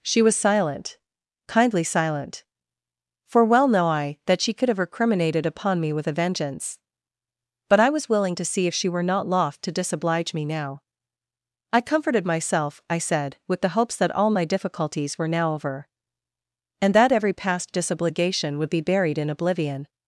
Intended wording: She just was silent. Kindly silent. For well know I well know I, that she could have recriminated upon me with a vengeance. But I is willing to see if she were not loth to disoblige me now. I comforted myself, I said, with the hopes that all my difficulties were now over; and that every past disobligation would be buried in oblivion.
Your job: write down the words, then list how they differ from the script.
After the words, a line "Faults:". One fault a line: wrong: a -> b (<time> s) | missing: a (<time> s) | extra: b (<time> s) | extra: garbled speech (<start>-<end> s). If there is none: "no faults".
She was silent. Kindly silent. For well know I, that she could have recriminated upon me with a vengeance. But I was willing to see if she were not loth to disoblige me now. I comforted myself, I said, with the hopes that all my difficulties were now over; and that every past disobligation would be buried in oblivion.
Faults:
missing: just (0.2 s)
missing: well know I (4.2 s)
wrong: is -> was (7.9 s)